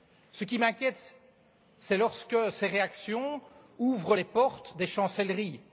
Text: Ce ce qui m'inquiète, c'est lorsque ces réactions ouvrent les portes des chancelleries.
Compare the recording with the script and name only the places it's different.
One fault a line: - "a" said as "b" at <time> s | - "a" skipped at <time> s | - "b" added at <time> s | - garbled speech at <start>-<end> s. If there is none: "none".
- "ce" skipped at 0.4 s